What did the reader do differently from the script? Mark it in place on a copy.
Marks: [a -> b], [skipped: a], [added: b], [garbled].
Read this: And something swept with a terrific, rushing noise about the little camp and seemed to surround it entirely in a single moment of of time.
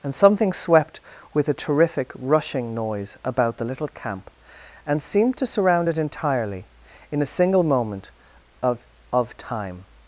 And something swept with a terrific, rushing noise about the little camp and seemed to surround it entirely in a single moment of of time.